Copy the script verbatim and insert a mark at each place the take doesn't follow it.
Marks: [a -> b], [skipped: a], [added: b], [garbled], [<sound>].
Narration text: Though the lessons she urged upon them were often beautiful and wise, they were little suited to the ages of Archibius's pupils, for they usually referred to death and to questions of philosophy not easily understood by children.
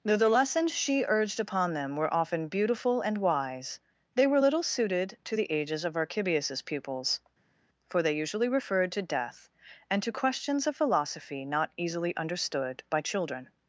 Though the lessons she urged upon them were often beautiful and wise, they were little suited to the ages of Archibius's pupils, for they usually referred to death and to questions of philosophy not easily understood by children.